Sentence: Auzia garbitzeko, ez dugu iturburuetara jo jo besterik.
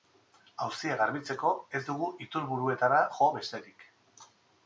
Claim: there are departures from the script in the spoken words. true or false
true